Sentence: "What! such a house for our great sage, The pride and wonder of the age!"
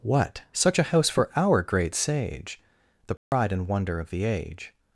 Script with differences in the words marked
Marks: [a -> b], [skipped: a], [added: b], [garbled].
"What! such a house for our great sage, The pride and wonder of the age!"